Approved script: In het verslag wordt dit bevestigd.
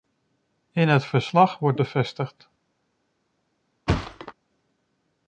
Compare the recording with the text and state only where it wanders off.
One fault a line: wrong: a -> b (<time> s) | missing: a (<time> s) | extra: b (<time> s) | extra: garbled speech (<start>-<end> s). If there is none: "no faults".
missing: dit (1.8 s)